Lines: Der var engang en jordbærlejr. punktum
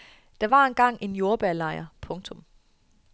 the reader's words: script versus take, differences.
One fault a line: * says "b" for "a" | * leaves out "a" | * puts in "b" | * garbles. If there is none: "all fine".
all fine